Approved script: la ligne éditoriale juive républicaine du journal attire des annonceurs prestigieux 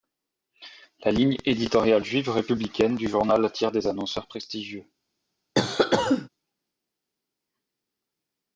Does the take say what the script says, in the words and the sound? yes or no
no